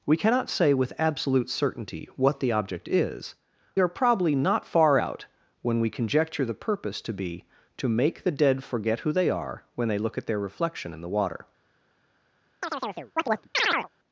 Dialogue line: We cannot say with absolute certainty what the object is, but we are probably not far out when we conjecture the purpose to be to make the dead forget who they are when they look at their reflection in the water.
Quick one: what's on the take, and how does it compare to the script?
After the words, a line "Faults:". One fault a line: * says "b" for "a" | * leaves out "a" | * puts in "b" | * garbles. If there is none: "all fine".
We cannot say with absolute certainty what the object is, are probably not far out when we conjecture the purpose to be to make the dead forget who they are when they look at their reflection in the water.
Faults:
* leaves out "but we"